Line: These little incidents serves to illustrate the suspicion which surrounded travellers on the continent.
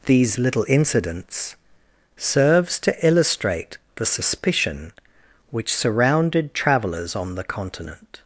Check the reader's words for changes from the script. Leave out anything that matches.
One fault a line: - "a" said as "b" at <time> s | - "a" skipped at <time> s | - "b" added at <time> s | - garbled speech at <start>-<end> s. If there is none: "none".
none